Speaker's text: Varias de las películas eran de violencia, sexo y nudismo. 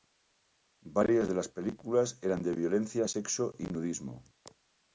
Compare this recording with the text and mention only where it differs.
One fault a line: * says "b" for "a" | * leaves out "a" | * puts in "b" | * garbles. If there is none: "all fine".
all fine